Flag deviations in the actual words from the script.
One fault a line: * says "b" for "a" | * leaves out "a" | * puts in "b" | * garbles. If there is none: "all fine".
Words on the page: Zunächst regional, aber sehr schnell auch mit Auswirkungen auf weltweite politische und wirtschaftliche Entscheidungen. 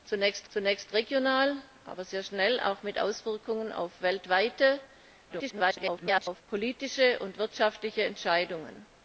* puts in "zunächst"
* garbles